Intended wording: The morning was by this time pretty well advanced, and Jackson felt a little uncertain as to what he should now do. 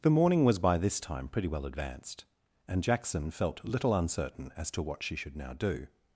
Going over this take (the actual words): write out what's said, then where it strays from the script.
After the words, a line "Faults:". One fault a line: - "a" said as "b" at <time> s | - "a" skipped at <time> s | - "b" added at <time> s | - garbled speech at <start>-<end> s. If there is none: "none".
The morning was by this time pretty well advanced, and Jackson felt little uncertain as to what she should now do.
Faults:
- "a" skipped at 3.6 s
- "he" said as "she" at 5.0 s